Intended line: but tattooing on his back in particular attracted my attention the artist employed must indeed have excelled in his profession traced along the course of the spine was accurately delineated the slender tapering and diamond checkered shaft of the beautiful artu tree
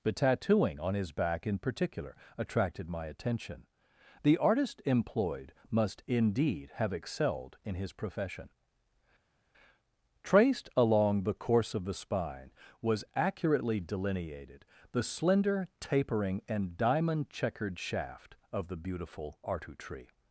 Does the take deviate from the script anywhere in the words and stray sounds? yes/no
no